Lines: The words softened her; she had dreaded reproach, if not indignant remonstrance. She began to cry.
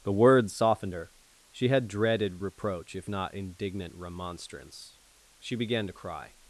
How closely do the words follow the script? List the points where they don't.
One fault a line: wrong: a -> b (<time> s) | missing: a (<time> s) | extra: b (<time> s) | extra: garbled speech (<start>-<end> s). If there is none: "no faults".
no faults